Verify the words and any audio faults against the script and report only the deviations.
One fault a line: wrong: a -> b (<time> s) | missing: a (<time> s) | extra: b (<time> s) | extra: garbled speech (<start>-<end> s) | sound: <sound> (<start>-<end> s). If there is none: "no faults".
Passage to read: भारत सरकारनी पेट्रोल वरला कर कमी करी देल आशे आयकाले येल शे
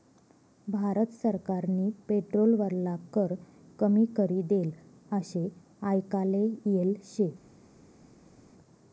no faults